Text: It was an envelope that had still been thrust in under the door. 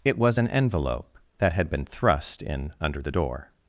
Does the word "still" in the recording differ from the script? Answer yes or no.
yes